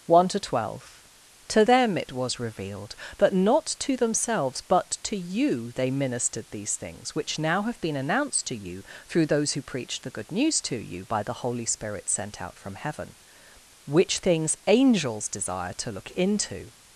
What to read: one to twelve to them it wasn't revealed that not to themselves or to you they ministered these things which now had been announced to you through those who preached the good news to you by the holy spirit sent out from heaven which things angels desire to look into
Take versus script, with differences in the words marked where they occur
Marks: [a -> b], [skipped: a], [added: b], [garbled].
one to twelve to them it [wasn't -> was] revealed that not to themselves [or -> but] to you they ministered these things which now [had -> have] been announced to you through those who preached the good news to you by the holy spirit sent out from heaven which things angels desire to look into